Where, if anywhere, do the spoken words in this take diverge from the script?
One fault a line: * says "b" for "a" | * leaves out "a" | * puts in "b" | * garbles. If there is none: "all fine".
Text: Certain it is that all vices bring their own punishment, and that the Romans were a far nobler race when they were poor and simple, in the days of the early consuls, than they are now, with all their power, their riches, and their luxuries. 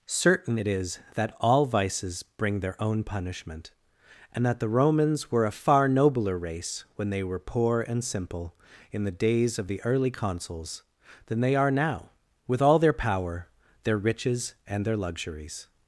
all fine